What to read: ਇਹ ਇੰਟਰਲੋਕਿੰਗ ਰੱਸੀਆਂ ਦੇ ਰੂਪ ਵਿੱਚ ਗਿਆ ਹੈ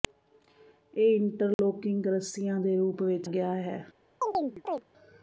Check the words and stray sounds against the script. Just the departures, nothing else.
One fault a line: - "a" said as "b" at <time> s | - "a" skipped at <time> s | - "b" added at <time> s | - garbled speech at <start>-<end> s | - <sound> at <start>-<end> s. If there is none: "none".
- dropout at 1.5-1.6 s
- chirp at 4.2-4.8 s